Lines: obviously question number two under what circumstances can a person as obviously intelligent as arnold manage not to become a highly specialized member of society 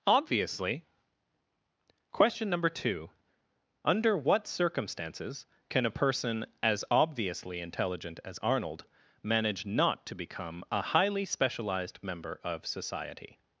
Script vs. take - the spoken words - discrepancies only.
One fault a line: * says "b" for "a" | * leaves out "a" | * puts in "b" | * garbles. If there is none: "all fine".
all fine